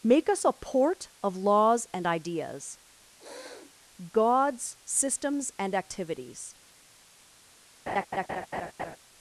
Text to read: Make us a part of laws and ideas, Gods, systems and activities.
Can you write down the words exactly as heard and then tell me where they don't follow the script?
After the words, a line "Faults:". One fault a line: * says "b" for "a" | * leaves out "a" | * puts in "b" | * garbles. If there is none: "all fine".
Make us a port of laws and ideas, Gods, systems and activities.
Faults:
* says "port" for "part"